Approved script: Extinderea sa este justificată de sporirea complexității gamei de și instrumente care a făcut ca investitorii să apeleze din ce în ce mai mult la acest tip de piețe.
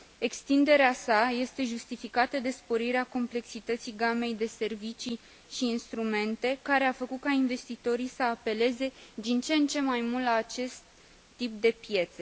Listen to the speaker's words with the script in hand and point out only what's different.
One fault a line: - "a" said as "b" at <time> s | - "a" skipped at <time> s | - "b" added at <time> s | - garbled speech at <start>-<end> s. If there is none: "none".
- "servicii" added at 4.5 s